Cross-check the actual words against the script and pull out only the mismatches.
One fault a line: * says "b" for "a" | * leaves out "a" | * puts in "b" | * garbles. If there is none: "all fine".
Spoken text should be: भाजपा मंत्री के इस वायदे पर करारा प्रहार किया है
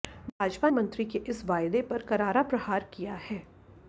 all fine